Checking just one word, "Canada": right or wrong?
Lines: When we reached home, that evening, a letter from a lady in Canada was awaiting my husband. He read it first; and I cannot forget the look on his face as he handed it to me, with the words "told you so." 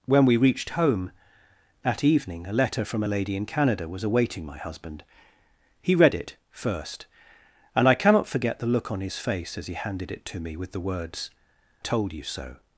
right